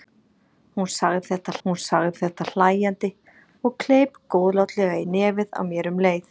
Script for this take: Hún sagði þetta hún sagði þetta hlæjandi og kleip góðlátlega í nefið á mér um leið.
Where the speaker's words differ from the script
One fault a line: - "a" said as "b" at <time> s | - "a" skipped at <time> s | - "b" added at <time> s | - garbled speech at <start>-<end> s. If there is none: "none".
none